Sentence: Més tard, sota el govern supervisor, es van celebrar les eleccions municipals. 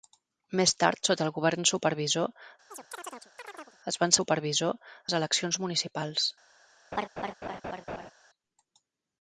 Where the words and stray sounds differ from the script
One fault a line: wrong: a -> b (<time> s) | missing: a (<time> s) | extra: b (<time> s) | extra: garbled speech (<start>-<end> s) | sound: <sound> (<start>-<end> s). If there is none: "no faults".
sound: chirp (2.7-3.8 s)
wrong: celebrar -> supervisor (4.2 s)
sound: laugh (6.9-8.1 s)